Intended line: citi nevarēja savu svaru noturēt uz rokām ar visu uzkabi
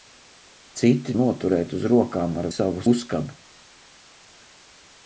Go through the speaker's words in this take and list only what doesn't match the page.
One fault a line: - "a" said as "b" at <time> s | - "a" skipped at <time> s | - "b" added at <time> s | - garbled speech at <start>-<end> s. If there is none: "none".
- "nevarēja savu svaru" skipped at 1.1 s
- "visu" said as "savu" at 2.5 s